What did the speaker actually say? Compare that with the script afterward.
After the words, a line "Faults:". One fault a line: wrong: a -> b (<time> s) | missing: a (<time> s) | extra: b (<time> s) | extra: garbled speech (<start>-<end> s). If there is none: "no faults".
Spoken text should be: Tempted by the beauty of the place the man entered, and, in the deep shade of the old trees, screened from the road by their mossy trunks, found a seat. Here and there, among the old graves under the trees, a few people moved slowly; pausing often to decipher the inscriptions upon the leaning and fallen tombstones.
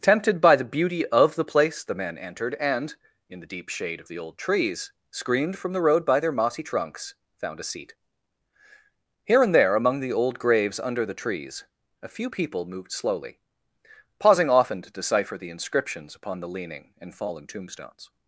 Tempted by the beauty of the place the man entered, and, in the deep shade of the old trees, screened from the road by their mossy trunks, found a seat. Here and there, among the old graves under the trees, a few people moved slowly; pausing often to decipher the inscriptions upon the leaning and fallen tombstones.
Faults:
no faults